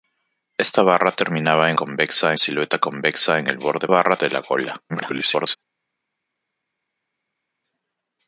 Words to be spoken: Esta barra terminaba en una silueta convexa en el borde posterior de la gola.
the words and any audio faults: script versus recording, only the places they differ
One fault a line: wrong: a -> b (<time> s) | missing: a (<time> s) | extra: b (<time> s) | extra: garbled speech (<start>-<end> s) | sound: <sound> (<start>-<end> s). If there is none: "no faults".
wrong: una -> convexa (1.7 s)
wrong: posterior -> barra (3.9 s)
extra: garbled speech (4.9-5.6 s)